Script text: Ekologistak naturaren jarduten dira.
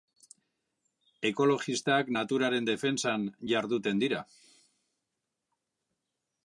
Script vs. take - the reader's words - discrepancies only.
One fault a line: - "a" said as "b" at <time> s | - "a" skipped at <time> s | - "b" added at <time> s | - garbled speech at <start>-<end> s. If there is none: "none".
- "defentsan" added at 2.7 s